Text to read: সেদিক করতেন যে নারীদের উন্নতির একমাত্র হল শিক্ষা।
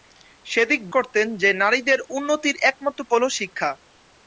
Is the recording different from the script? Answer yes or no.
no